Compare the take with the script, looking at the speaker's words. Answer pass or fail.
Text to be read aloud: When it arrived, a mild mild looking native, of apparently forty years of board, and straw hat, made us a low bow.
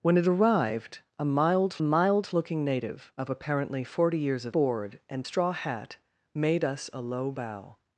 pass